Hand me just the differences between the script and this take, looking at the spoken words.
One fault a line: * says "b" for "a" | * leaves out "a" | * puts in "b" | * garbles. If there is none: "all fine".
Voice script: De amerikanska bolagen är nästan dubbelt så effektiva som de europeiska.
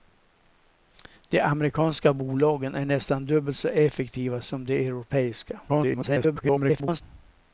* garbles